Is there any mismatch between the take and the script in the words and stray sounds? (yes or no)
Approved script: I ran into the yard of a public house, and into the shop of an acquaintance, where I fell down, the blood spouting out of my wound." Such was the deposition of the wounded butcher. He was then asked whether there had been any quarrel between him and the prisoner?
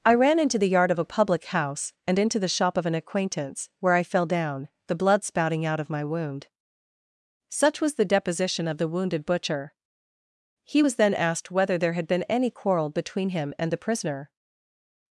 no